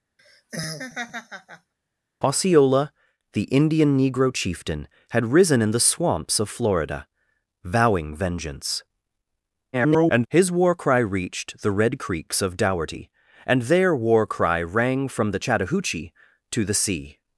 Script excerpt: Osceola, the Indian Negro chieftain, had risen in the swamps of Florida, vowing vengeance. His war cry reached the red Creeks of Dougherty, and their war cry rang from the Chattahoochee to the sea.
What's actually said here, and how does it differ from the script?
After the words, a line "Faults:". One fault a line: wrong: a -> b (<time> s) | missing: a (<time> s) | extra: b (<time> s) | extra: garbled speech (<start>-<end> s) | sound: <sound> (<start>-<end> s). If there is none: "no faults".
Osceola, the Indian Negro chieftain, had risen in the swamps of Florida, vowing vengeance. [garbled] His war cry reached the red Creeks of Dougherty, and their war cry rang from the Chattahoochee to the sea.
Faults:
sound: laugh (0.2-1.7 s)
extra: garbled speech (9.7-10.3 s)